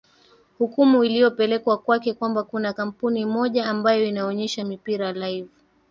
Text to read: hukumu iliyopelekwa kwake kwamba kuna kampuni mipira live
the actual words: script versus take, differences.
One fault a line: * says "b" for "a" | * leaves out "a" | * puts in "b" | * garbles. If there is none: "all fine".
* puts in "moja ambayo inaonyesha"